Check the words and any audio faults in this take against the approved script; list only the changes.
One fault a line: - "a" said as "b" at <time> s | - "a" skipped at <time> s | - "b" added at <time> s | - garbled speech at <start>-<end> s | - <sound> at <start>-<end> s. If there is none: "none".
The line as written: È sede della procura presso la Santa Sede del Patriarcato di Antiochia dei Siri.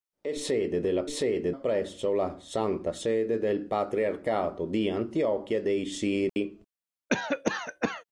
- "procura" said as "sede" at 1.0 s
- dropout at 6.3-6.4 s
- cough at 7.1-8.0 s